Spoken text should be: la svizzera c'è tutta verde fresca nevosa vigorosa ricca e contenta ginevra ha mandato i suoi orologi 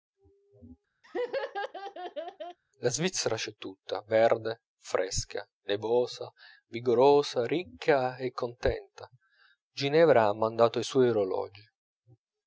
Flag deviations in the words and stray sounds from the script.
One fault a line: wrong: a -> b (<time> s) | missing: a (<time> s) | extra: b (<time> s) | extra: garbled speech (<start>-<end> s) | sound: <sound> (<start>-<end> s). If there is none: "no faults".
sound: laugh (1.0-2.6 s)